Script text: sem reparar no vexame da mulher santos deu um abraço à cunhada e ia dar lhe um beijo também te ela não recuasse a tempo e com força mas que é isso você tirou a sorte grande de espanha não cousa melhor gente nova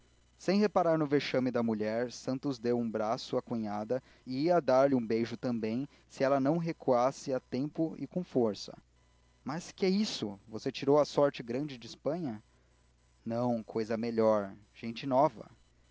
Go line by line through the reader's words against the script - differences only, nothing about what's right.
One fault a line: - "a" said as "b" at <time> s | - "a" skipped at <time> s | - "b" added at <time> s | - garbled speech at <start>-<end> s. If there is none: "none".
- "te" said as "se" at 6.1 s